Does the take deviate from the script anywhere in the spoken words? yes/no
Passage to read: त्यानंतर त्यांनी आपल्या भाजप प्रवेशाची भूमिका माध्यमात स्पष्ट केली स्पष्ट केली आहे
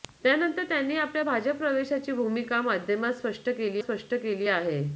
no